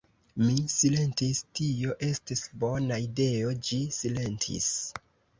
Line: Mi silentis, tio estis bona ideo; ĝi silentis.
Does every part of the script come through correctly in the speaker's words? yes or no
yes